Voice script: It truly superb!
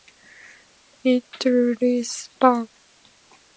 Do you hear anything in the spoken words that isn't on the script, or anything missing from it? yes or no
no